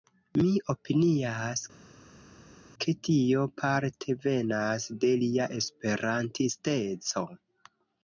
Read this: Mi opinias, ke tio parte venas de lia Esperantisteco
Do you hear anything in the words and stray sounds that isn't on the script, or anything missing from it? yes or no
no